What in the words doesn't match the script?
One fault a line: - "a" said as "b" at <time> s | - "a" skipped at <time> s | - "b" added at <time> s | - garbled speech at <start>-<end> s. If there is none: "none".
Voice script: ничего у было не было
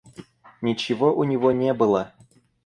- "было" said as "него" at 1.2 s